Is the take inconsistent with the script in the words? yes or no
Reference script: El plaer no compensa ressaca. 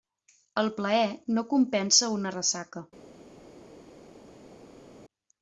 yes